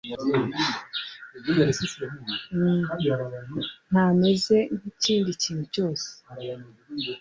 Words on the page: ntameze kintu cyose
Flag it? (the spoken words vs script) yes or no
yes